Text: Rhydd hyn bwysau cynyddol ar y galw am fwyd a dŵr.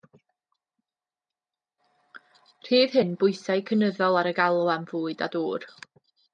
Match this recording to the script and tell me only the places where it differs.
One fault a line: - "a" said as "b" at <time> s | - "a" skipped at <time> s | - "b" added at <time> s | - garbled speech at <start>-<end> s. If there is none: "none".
none